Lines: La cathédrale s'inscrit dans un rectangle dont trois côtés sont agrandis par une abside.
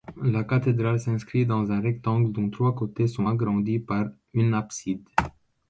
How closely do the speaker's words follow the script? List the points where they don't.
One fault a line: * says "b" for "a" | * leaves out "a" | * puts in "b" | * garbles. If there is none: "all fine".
all fine